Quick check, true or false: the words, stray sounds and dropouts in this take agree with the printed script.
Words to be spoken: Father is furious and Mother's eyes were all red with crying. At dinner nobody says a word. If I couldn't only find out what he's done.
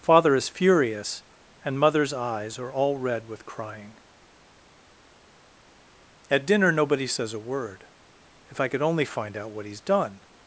false